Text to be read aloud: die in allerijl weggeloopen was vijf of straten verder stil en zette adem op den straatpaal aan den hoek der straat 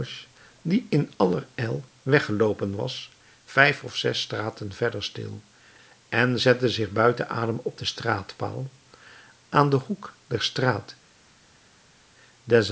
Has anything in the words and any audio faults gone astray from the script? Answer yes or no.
yes